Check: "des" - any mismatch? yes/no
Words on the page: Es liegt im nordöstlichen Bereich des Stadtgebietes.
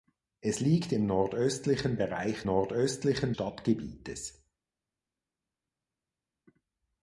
yes